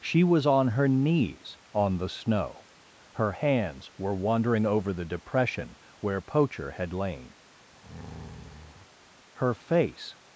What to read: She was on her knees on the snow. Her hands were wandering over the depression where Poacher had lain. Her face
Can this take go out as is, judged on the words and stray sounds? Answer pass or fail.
fail